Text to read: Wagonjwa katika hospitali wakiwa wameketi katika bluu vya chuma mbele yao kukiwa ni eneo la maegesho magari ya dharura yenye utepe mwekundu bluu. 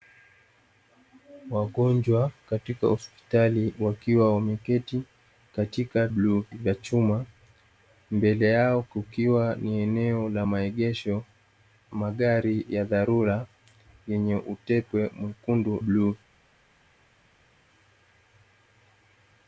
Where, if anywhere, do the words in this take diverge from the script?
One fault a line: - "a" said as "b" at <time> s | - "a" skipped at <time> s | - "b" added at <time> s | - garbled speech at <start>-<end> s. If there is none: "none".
none